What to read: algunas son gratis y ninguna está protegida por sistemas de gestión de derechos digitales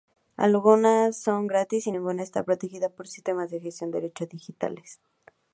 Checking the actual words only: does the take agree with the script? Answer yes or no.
yes